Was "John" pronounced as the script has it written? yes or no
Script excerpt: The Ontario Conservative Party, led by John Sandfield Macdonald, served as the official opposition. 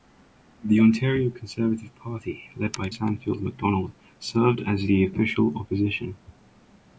no